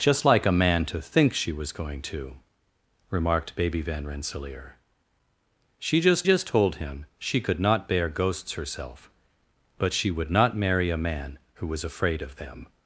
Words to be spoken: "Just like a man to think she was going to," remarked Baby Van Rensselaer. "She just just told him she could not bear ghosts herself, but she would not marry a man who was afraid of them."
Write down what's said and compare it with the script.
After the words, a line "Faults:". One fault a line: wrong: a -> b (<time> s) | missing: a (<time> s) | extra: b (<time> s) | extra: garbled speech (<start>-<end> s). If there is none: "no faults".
"Just like a man to think she was going to," remarked Baby Van Rensselaer. "She just just told him she could not bear ghosts herself, but she would not marry a man who was afraid of them."
Faults:
no faults